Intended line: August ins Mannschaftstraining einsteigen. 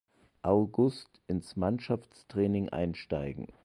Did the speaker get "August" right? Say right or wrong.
right